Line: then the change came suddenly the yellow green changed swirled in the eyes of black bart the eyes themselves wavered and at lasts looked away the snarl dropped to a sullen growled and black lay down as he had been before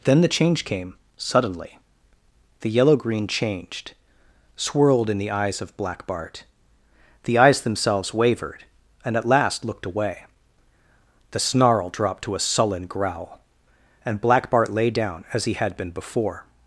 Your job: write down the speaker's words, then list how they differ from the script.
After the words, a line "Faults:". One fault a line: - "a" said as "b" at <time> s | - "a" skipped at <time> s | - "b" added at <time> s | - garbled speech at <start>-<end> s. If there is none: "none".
then the change came suddenly the yellow green changed swirled in the eyes of black bart the eyes themselves wavered and at last looked away the snarl dropped to a sullen growl and black bart lay down as he had been before
Faults:
- "lasts" said as "last" at 9.3 s
- "growled" said as "growl" at 12.9 s
- "bart" added at 14.5 s